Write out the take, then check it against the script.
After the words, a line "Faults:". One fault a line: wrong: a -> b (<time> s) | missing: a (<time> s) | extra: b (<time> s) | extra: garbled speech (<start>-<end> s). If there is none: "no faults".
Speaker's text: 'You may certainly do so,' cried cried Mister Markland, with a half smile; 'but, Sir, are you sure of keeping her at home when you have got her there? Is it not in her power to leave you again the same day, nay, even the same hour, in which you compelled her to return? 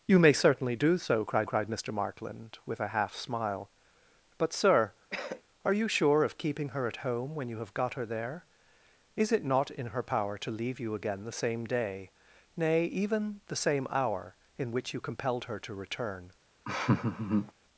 'You may certainly do so,' cried cried Mister Markland, with a half smile; 'but, Sir, are you sure of keeping her at home when you have got her there? Is it not in her power to leave you again the same day, nay, even the same hour, in which you compelled her to return?
Faults:
no faults